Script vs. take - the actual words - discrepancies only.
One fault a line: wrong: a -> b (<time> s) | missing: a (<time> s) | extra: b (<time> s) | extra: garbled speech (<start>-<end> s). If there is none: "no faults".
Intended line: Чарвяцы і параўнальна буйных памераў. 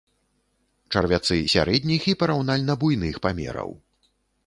extra: сярэдніх (1.5 s)